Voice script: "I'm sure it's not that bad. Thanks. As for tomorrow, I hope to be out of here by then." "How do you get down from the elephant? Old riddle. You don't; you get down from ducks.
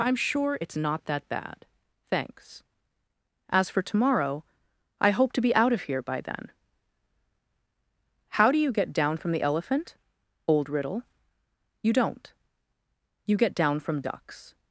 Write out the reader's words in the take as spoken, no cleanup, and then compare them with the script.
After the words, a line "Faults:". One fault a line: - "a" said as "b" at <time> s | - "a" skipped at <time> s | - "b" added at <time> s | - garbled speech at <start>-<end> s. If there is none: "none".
"I'm sure it's not that bad. Thanks. As for tomorrow, I hope to be out of here by then." "How do you get down from the elephant? Old riddle. You don't; you get down from ducks.
Faults:
none